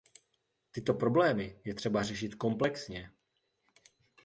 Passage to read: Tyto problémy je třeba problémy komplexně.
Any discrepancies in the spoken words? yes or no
yes